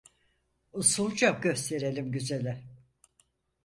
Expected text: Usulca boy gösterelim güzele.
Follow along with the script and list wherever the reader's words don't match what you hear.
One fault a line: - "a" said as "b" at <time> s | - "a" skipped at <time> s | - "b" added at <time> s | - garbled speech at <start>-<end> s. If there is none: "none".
- "boy" skipped at 1.5 s